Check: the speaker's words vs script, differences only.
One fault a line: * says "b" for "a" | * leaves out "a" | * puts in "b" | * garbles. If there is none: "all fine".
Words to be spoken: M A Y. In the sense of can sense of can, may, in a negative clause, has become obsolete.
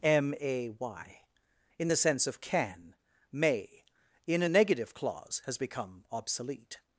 * leaves out "sense of can"